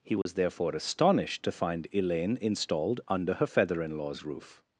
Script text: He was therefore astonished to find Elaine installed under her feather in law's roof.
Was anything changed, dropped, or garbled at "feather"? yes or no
no